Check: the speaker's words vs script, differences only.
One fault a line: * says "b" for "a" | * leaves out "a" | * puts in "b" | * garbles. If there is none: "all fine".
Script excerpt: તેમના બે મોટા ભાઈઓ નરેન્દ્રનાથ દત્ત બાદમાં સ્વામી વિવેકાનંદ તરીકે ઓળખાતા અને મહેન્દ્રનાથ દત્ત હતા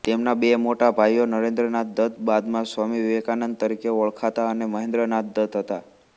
all fine